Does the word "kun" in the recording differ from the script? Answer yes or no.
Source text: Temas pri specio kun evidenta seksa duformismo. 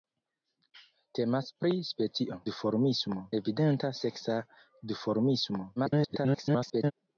yes